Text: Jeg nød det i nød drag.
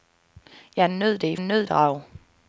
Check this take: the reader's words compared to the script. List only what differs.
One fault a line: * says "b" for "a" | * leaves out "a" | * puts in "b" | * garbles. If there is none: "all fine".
all fine